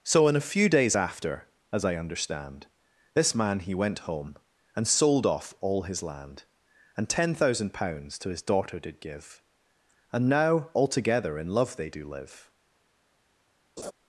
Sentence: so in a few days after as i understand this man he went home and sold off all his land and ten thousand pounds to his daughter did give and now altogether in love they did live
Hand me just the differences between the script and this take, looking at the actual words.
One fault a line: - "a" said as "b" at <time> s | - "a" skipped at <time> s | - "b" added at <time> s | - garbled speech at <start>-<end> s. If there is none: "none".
- "did" said as "do" at 11.9 s